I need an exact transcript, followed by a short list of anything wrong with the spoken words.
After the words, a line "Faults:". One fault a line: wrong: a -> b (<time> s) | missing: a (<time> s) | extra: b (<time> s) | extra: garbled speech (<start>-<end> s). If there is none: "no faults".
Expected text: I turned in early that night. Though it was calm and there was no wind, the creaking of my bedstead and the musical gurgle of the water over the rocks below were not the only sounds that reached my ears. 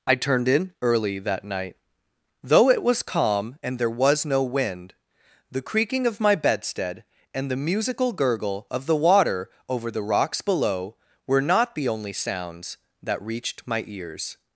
I turned in early that night. Though it was calm and there was no wind, the creaking of my bedstead and the musical gurgle of the water over the rocks below were not the only sounds that reached my ears.
Faults:
no faults